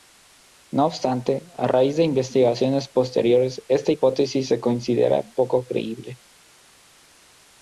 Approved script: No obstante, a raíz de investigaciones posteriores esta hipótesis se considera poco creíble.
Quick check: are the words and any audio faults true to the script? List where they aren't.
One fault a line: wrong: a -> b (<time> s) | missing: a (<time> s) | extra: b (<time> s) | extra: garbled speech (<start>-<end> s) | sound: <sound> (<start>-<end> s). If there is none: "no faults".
no faults